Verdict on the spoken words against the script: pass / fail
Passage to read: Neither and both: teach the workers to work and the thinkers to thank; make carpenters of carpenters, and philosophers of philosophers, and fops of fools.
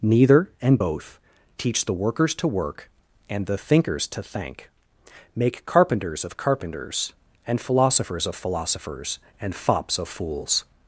pass